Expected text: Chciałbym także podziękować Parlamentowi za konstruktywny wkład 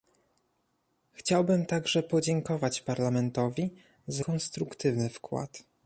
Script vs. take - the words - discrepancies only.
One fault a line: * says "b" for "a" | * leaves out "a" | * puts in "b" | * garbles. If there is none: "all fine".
all fine